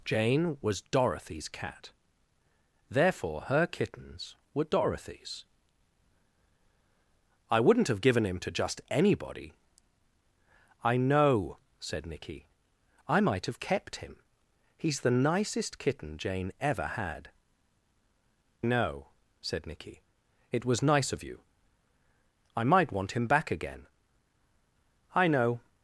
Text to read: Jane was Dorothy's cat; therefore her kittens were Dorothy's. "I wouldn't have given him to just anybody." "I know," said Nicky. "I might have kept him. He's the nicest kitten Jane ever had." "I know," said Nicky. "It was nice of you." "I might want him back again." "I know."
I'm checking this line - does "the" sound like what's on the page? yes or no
yes